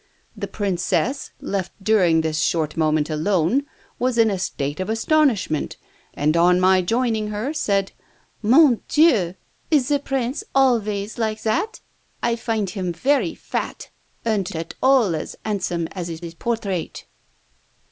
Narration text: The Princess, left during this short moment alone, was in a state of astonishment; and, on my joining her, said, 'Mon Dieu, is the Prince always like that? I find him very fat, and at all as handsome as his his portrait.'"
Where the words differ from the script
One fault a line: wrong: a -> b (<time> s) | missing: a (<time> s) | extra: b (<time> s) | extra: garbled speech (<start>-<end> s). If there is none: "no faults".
no faults